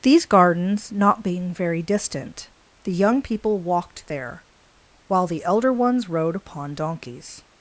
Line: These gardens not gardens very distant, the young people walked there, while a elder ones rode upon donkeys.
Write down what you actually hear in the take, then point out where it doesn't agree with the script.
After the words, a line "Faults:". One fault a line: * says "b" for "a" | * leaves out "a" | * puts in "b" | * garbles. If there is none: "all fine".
These gardens not being very distant, the young people walked there, while the elder ones rode upon donkeys.
Faults:
* says "being" for "gardens"
* says "the" for "a"